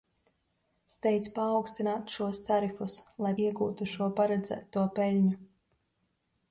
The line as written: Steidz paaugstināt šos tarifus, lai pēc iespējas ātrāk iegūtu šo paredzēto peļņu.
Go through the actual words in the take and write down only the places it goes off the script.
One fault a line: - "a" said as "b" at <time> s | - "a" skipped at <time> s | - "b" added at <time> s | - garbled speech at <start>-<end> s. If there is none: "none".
- "pēc iespējas ātrāk" skipped at 3.4 s